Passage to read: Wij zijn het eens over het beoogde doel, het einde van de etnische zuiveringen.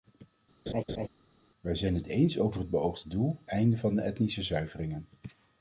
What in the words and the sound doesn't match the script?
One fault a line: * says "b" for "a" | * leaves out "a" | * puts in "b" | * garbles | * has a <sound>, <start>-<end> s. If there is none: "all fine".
* has a laugh, 0.7-1.1 s
* leaves out "het"